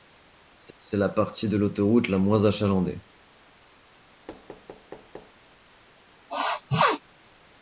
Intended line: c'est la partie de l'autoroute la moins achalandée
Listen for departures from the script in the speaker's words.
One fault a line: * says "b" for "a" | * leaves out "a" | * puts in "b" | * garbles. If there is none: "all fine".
* puts in "c'est"